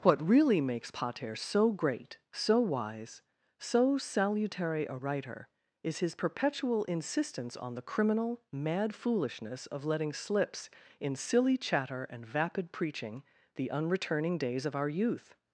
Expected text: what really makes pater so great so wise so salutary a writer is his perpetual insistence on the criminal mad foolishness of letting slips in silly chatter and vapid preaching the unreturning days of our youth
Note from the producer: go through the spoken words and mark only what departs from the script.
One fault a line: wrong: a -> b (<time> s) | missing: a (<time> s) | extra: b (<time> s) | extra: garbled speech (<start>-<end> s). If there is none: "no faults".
no faults